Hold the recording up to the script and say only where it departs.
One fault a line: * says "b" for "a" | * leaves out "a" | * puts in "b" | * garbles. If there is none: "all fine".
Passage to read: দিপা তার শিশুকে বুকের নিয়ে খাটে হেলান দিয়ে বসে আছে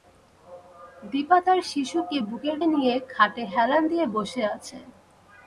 all fine